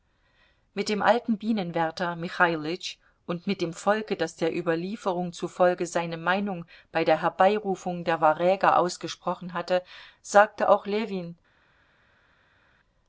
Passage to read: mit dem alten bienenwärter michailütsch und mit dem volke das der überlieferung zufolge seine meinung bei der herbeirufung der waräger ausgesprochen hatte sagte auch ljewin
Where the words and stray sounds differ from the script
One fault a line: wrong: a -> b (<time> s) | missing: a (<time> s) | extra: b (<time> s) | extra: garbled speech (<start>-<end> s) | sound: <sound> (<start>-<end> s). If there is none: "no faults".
no faults